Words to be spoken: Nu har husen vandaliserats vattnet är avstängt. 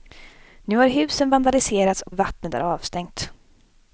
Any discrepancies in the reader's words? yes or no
yes